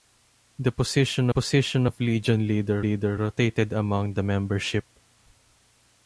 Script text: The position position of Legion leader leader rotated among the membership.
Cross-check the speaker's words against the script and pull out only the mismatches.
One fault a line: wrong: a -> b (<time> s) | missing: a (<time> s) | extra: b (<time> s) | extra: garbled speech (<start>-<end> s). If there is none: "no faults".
no faults